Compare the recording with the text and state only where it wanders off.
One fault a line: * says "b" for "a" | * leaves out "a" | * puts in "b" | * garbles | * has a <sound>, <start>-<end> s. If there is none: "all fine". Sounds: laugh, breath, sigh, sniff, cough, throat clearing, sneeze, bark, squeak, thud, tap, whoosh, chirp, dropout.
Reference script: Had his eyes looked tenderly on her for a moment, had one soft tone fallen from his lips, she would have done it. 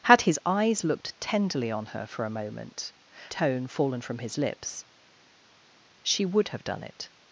* leaves out "had one soft"